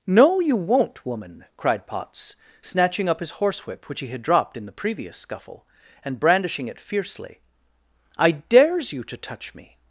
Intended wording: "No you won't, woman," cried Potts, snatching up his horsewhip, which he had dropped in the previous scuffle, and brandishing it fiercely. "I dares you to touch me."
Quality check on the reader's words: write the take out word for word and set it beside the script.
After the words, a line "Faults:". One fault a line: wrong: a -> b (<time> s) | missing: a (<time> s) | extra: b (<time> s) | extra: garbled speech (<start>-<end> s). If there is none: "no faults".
"No you won't, woman," cried Potts, snatching up his horsewhip, which he had dropped in the previous scuffle, and brandishing it fiercely. "I dares you to touch me."
Faults:
no faults